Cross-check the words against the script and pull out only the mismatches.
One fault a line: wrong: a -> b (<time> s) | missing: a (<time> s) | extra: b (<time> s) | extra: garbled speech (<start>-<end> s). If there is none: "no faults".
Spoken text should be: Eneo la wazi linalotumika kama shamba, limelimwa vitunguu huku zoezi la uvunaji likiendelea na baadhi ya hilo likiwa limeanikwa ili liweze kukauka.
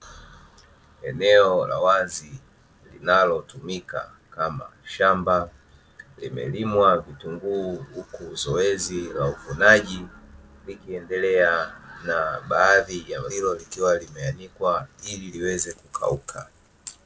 no faults